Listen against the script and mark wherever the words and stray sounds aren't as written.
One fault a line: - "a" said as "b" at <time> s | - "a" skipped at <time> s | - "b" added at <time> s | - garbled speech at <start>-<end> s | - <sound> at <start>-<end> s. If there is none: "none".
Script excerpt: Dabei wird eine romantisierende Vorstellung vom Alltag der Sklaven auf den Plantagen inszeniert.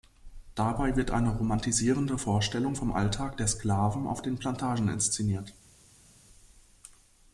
none